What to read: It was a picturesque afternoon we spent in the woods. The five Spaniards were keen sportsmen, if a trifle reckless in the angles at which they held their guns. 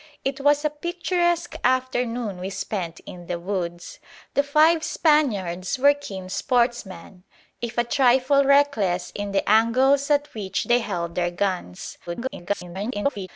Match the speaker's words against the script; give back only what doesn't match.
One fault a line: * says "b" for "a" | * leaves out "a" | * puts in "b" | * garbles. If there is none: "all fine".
* garbles